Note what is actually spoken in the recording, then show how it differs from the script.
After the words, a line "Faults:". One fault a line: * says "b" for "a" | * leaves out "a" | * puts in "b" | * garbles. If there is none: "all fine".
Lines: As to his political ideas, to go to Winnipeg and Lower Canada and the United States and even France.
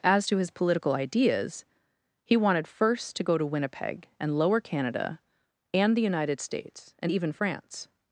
As to his political ideas, he wanted first to go to Winnipeg and Lower Canada and the United States and even France.
Faults:
* puts in "he wanted first"